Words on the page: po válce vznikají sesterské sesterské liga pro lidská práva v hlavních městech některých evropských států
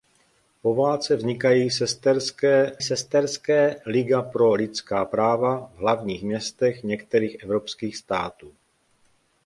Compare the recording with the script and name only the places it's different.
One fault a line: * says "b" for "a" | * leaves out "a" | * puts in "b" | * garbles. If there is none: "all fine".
all fine